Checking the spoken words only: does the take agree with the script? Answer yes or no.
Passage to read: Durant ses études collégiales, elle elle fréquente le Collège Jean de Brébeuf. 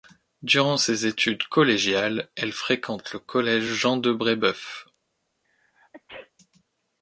no